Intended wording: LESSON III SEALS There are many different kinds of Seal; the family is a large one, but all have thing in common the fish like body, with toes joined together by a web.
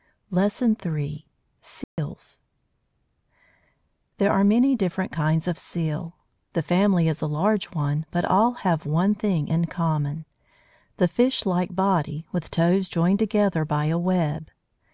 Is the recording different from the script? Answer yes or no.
yes